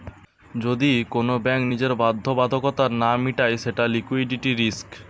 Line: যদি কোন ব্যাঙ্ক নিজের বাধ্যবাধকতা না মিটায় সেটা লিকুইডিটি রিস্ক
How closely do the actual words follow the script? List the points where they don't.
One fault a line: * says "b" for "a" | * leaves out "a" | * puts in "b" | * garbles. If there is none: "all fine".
all fine